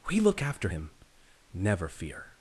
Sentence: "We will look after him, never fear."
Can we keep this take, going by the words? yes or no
no